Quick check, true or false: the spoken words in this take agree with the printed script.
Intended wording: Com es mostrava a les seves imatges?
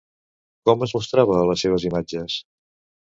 true